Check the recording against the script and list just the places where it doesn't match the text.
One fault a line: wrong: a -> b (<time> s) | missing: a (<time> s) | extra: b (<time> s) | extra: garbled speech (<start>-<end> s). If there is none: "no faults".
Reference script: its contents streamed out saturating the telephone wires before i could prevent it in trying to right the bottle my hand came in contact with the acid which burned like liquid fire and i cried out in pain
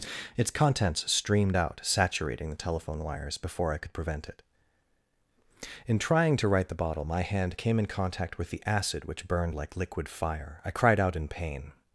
missing: and (10.6 s)